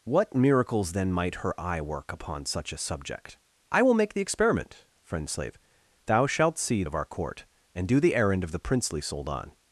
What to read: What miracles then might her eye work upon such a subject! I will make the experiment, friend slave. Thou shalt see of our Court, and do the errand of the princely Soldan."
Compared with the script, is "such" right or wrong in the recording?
right